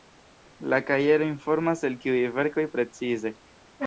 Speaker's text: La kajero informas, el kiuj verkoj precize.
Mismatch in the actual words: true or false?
false